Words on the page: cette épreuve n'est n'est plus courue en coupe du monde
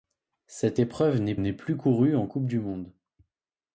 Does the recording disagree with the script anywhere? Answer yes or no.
no